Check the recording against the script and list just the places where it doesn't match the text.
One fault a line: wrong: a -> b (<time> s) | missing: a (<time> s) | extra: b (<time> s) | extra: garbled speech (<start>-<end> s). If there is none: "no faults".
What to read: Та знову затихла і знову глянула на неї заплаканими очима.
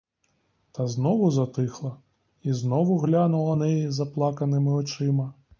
missing: на (3.5 s)